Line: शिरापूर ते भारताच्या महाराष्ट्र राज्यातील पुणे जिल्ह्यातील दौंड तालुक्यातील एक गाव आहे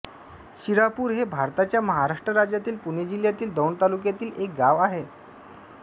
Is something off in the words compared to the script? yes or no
yes